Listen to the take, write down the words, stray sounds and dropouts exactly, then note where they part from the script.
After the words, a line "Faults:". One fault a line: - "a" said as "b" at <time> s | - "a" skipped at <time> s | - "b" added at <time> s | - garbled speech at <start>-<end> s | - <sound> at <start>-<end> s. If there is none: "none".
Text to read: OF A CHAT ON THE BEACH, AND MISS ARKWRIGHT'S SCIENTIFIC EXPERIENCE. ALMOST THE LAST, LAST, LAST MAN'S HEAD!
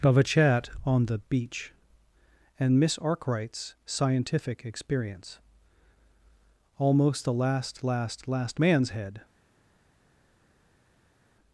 OF A CHAT ON THE BEACH, AND MISS ARKWRIGHT'S SCIENTIFIC EXPERIENCE. ALMOST THE LAST, LAST, LAST MAN'S HEAD!
Faults:
none